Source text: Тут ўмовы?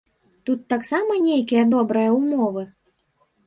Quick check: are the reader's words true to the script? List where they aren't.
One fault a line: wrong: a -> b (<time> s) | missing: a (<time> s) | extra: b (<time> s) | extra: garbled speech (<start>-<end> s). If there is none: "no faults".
extra: таксама нейкія добрыя (0.7 s)